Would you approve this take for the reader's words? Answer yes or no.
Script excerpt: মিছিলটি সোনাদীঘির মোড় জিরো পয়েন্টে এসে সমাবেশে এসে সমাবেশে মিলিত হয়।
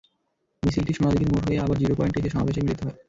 no